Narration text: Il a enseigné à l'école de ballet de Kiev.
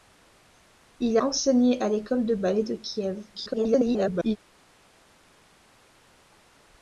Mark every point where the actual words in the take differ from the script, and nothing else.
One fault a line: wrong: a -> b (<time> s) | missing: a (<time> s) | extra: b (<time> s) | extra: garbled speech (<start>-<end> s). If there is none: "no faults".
missing: a (1.2 s)
extra: garbled speech (3.3-4.4 s)